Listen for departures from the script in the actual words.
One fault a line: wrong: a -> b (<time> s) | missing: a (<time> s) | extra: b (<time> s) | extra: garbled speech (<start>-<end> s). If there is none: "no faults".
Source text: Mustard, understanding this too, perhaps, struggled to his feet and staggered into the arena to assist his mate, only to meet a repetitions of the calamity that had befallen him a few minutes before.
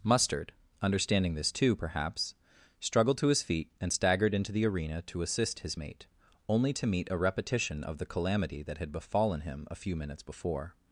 wrong: repetitions -> repetition (7.2 s)